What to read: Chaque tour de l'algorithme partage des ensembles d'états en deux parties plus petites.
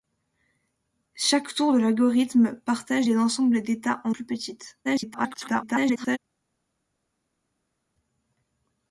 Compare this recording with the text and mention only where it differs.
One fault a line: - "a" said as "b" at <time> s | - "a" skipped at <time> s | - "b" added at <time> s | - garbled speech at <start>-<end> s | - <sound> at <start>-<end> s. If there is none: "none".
- "deux parties" skipped at 4.1 s
- garbled speech at 4.8-6.2 s